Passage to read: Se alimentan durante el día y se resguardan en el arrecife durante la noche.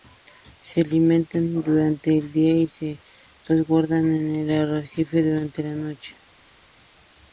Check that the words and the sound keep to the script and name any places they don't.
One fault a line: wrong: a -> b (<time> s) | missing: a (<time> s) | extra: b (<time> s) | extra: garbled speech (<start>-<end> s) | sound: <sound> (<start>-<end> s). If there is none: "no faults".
no faults